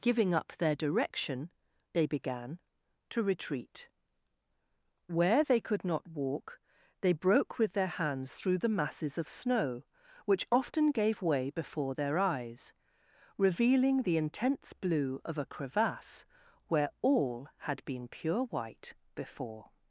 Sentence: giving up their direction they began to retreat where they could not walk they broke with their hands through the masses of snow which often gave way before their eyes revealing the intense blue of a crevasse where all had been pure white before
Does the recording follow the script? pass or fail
pass